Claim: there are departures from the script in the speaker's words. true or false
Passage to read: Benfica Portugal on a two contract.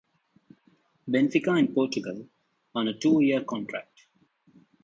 true